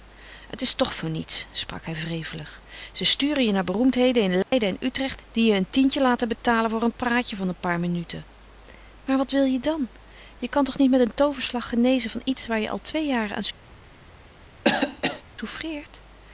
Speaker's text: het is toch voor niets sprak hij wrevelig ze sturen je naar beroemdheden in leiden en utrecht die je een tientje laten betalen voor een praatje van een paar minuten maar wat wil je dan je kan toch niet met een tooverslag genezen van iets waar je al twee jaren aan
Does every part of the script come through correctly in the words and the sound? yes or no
no